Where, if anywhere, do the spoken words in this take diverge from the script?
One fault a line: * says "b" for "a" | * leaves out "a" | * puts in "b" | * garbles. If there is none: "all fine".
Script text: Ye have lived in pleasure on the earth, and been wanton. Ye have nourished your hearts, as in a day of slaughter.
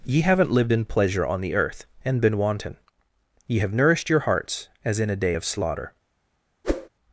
* says "haven't" for "have"